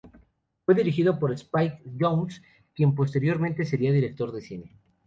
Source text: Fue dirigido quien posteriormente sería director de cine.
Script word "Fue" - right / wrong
right